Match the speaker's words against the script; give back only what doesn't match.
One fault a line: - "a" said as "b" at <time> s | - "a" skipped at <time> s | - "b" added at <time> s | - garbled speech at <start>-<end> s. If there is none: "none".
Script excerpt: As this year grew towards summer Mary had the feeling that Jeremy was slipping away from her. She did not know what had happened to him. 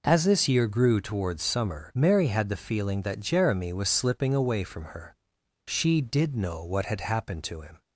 - "not" skipped at 6.3 s